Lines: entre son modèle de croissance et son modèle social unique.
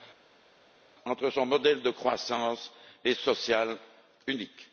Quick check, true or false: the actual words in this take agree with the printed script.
false